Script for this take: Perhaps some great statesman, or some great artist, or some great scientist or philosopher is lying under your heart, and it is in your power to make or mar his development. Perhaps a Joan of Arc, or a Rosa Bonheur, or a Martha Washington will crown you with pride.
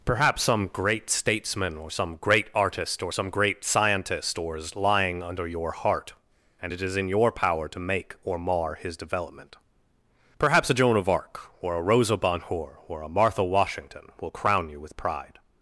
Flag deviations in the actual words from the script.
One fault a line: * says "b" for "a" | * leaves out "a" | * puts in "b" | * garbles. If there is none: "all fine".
* leaves out "philosopher"